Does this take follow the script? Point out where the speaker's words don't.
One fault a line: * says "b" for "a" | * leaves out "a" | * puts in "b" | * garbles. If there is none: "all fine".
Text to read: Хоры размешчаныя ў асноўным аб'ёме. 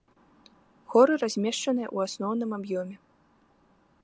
all fine